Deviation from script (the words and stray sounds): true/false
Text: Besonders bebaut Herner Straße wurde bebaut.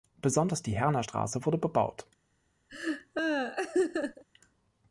true